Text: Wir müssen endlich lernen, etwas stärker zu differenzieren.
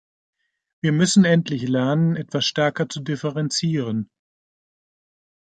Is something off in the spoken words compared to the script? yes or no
no